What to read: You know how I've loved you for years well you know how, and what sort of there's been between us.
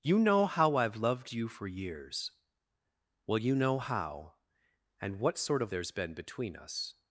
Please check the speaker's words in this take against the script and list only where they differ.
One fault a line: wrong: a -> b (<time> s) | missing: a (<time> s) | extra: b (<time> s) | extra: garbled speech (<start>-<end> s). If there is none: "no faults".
no faults